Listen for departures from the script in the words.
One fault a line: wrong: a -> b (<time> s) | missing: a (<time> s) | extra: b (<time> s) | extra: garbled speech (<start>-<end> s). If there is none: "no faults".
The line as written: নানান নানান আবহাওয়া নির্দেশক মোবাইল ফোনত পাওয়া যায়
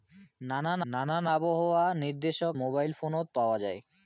no faults